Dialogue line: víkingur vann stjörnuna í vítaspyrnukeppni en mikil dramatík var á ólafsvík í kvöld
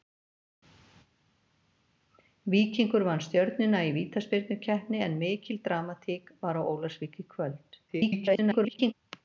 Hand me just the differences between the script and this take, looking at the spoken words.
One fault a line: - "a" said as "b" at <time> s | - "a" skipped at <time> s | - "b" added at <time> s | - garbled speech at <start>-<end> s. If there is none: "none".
- garbled speech at 7.9-8.9 s